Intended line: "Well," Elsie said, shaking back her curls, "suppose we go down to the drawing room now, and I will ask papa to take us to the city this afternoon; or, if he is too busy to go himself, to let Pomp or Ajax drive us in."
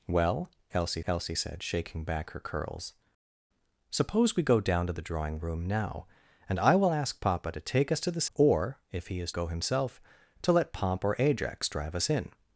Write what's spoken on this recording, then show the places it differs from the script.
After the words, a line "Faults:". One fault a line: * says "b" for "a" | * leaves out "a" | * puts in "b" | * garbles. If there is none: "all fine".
"Well," Elsie Elsie said, shaking back her curls, "suppose we go down to the drawing room now, and I will ask papa to take us to the; or, if he is go himself, to let Pomp or Ajax drive us in."
Faults:
* puts in "Elsie"
* leaves out "city this afternoon"
* leaves out "too busy to"